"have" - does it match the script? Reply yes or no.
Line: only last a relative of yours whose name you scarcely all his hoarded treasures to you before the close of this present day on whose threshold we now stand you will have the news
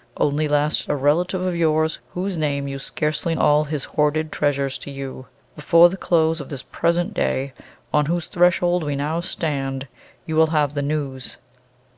yes